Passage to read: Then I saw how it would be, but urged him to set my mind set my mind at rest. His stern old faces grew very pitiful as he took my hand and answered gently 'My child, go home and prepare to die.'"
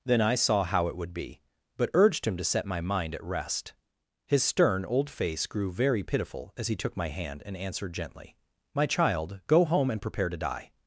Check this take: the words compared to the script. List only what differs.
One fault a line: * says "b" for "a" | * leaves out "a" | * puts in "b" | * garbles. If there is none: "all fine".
* leaves out "set my mind"
* says "face" for "faces"